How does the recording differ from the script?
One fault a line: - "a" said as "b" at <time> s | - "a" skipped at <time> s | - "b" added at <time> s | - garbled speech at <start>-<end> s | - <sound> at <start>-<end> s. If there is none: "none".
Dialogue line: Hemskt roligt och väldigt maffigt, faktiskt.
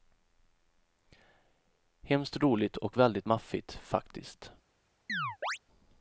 - chirp at 5.1-5.6 s